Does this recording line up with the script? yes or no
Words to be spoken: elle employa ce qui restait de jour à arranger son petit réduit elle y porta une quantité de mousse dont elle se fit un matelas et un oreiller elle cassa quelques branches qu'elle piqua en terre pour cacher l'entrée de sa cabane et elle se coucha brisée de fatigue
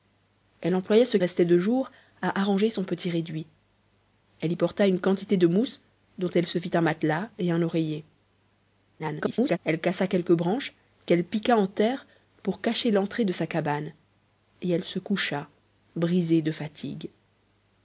no